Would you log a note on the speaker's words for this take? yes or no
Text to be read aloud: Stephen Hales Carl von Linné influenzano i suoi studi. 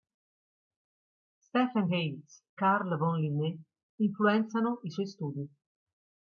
no